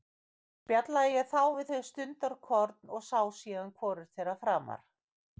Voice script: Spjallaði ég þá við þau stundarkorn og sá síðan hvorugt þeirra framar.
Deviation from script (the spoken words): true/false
false